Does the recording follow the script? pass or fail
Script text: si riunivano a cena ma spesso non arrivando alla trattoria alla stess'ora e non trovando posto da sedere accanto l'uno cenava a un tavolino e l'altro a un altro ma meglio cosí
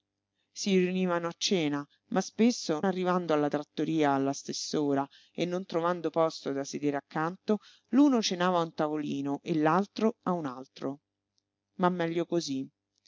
fail